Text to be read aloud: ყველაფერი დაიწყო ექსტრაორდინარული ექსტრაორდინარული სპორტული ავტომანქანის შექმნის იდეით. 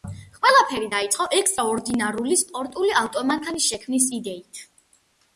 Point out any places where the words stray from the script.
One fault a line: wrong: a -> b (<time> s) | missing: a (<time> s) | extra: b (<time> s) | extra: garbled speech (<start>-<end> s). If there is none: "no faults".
missing: ექსტრაორდინარული (2.4 s)